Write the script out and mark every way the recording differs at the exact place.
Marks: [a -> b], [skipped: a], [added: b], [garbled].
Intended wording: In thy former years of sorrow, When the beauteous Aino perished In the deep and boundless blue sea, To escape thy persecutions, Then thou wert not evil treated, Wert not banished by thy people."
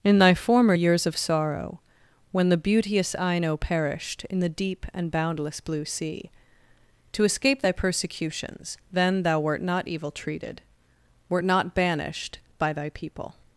In thy former years of sorrow, When the beauteous Aino perished In the deep and boundless blue sea, To escape thy persecutions, Then thou wert not evil treated, Wert not banished by thy people."